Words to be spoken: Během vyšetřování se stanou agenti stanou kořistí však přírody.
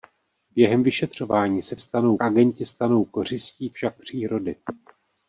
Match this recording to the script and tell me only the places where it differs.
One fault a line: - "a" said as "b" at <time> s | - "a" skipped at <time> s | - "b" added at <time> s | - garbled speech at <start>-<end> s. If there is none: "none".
none